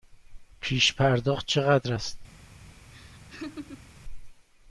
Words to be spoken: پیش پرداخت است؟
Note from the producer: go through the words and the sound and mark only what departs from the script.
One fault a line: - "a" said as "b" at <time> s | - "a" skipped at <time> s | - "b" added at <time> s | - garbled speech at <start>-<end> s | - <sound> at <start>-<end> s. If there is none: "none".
- "چقدر" added at 1.4 s
- laugh at 2.9-3.9 s